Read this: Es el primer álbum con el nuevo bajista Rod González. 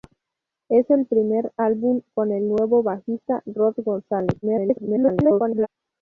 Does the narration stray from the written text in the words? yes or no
yes